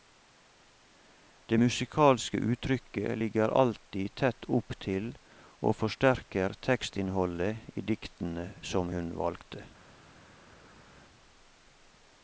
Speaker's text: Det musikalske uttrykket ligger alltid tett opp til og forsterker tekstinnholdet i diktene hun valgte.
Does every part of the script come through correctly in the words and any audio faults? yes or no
no